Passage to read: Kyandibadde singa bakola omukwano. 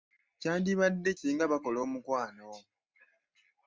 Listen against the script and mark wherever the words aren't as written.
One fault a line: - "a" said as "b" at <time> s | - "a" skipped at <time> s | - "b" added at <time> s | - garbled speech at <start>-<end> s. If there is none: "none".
none